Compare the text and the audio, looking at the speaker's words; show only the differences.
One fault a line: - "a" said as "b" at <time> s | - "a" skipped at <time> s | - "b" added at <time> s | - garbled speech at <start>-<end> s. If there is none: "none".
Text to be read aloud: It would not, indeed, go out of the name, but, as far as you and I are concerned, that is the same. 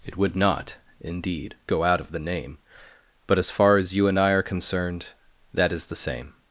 none